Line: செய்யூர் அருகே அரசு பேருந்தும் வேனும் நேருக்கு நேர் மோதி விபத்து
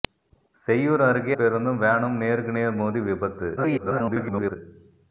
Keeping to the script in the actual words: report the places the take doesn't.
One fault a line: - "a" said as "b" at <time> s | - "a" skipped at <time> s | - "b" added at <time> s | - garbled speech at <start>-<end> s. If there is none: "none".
- "அரசு" skipped at 1.4 s
- garbled speech at 3.6-4.6 s